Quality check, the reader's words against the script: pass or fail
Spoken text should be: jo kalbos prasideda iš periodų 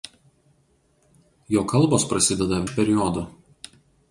pass